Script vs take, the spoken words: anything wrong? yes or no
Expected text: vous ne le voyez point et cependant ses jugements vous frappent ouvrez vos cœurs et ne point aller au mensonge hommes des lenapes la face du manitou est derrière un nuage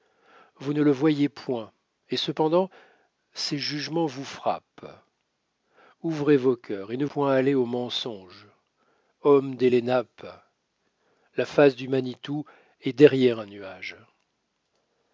no